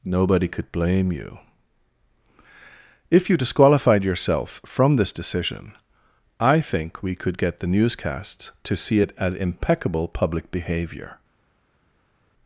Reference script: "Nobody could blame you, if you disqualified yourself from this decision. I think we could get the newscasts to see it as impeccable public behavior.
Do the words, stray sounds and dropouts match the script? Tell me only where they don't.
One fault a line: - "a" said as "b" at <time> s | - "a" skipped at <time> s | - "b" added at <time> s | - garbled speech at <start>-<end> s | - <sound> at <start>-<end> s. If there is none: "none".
none